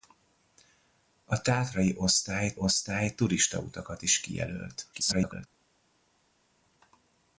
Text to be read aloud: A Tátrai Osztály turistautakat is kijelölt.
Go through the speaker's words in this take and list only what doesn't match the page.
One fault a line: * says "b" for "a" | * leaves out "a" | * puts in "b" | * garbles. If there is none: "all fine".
* puts in "Osztály"
* garbles